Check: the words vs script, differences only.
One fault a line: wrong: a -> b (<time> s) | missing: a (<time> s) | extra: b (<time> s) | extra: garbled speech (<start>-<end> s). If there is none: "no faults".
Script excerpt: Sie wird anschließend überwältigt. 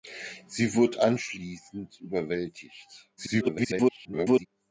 extra: garbled speech (3.2-4.5 s)